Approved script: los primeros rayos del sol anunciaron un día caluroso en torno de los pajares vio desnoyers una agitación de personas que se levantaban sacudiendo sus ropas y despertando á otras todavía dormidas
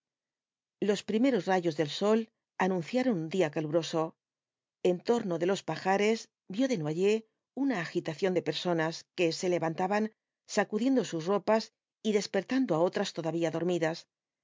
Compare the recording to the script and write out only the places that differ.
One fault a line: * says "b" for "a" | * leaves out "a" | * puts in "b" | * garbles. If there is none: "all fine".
all fine